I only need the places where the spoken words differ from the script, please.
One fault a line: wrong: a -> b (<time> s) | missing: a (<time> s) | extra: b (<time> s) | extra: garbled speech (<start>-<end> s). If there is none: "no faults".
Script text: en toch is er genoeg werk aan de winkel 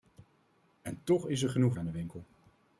missing: werk (1.7 s)